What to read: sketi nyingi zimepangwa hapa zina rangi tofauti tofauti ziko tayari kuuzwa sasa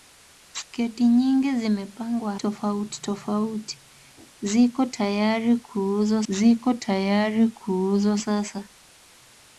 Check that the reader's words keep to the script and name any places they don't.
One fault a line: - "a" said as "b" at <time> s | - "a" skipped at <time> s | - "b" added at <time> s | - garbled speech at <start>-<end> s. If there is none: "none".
- "hapa zina rangi tofauti tofauti" said as "tofauti tofauti ziko tayari kuuzwa" at 2.3 s